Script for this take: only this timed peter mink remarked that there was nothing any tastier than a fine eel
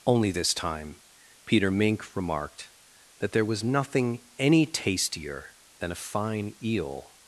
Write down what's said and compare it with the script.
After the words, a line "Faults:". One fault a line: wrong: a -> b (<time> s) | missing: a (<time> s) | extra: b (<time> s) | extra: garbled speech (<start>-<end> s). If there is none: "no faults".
only this time peter mink remarked that there was nothing any tastier than a fine eel
Faults:
wrong: timed -> time (0.5 s)